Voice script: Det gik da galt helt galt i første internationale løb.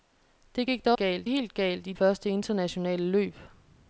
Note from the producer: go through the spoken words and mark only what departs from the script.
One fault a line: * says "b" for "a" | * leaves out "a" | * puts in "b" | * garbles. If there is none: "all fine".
all fine